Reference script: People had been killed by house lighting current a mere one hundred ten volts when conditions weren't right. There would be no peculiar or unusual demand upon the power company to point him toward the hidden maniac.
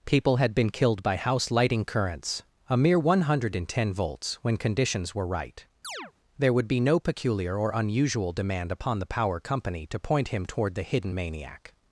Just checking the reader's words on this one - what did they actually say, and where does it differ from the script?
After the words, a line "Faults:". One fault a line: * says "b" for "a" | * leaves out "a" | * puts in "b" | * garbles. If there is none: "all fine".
People had been killed by house lighting currents a mere one hundred ten volts when conditions were right. There would be no peculiar or unusual demand upon the power company to point him toward the hidden maniac.
Faults:
* says "currents" for "current"
* says "were" for "weren't"